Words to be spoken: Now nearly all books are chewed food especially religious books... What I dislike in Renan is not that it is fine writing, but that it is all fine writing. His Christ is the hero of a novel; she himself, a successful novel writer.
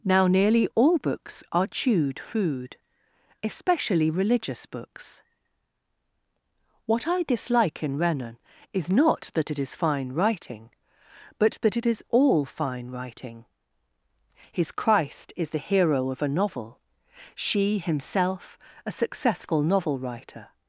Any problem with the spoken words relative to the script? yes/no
no